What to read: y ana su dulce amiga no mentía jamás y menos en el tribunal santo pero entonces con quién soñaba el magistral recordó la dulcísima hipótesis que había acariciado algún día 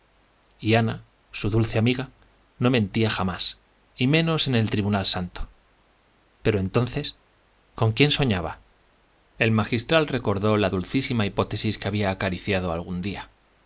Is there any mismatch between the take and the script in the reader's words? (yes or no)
no